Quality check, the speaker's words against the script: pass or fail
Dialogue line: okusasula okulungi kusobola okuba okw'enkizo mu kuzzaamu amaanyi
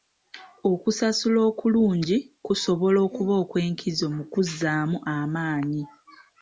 pass